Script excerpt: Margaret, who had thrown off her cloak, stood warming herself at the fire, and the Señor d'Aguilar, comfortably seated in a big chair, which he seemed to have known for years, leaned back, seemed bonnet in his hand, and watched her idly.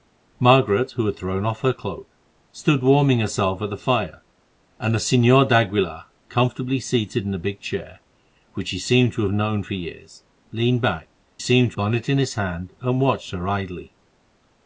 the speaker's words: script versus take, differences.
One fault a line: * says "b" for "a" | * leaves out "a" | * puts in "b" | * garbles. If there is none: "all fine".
all fine